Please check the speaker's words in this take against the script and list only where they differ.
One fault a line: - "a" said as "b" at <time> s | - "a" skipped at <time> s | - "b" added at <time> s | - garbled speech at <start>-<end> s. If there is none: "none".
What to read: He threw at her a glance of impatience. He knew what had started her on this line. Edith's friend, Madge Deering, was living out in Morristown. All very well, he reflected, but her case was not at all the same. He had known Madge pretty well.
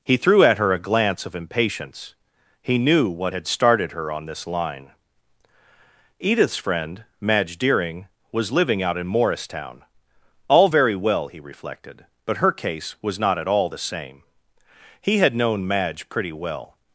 none